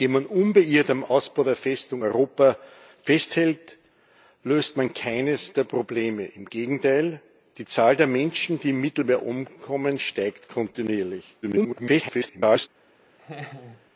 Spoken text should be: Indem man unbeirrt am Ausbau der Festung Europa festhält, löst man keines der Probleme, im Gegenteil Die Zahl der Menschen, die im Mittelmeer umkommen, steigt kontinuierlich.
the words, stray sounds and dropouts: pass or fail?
fail